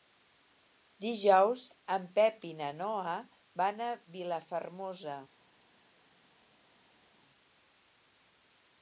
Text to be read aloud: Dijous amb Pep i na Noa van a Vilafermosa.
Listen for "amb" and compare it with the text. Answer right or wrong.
wrong